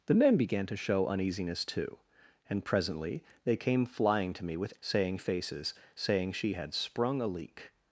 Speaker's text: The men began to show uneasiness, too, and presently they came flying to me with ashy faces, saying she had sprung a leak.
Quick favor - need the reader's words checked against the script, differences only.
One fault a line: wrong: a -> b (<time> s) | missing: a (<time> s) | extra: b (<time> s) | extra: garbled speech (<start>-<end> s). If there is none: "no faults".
wrong: ashy -> saying (4.8 s)